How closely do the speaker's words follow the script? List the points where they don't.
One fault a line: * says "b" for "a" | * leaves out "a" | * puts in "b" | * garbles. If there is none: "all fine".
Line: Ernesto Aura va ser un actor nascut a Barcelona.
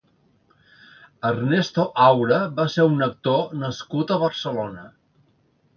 all fine